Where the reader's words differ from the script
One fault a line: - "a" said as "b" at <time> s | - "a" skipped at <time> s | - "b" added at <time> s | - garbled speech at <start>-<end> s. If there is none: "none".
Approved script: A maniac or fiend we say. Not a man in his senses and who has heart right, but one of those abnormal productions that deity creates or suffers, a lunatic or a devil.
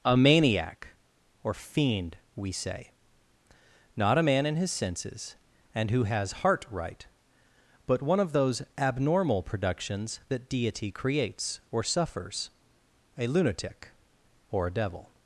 none